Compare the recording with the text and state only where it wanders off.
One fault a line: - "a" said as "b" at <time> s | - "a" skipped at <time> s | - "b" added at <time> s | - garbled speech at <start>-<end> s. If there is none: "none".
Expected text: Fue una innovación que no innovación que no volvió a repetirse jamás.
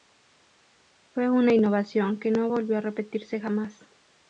- "innovación que no" skipped at 2.5 s